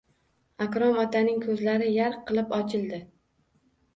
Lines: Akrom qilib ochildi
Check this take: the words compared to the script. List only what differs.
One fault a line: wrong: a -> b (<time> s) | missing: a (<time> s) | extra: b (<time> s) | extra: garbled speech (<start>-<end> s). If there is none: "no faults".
extra: otaning ko`zlari yarq (1.0 s)